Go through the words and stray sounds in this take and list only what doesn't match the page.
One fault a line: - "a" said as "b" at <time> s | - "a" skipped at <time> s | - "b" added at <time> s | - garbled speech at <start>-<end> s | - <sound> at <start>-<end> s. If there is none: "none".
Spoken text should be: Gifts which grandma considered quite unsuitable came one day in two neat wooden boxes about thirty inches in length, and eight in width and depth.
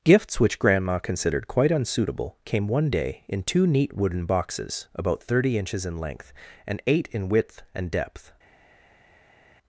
none